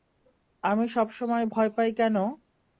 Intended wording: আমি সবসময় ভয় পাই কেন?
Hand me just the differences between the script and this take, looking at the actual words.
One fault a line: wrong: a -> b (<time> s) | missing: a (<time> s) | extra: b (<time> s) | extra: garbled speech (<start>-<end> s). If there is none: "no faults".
no faults